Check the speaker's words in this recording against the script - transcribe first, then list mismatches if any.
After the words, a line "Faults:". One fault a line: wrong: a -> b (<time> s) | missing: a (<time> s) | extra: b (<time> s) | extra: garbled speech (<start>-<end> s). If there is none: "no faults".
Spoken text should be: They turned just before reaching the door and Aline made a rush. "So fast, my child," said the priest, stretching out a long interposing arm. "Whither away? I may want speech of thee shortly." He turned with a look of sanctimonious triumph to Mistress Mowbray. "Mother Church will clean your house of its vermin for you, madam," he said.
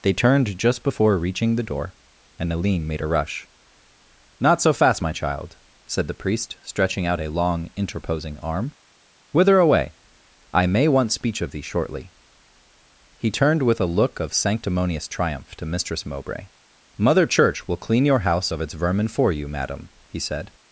They turned just before reaching the door and Aline made a rush. "Not so fast, my child," said the priest, stretching out a long interposing arm. "Whither away? I may want speech of thee shortly." He turned with a look of sanctimonious triumph to Mistress Mowbray. "Mother Church will clean your house of its vermin for you, madam," he said.
Faults:
extra: Not (4.4 s)